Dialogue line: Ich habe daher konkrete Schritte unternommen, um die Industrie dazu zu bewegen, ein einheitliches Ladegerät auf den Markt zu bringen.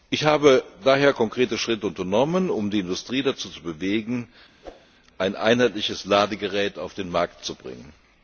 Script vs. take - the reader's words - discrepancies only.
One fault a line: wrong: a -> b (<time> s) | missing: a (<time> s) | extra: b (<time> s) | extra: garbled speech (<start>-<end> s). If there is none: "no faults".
no faults